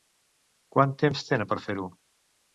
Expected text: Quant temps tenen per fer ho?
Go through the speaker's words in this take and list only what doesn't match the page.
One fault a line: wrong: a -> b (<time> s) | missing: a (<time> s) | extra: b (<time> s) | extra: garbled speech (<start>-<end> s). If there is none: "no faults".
no faults